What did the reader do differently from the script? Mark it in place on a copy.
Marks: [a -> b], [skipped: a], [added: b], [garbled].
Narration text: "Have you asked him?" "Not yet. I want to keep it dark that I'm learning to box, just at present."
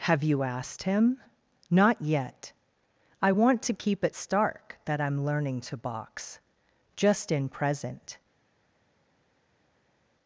"Have you asked him?" "Not yet. I want to keep it [dark -> stark] that I'm learning to box, just [at -> in] present."